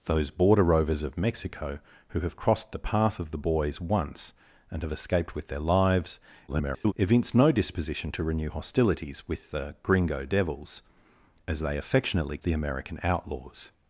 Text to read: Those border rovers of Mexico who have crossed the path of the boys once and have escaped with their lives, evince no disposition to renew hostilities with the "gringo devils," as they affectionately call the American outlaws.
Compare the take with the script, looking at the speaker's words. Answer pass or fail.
fail